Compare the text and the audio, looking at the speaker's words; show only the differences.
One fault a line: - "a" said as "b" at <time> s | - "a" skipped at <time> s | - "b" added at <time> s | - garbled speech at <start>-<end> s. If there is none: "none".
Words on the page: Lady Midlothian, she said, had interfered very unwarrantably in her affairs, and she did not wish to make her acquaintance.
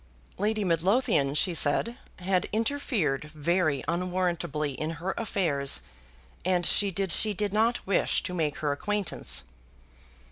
- "she did" added at 7.1 s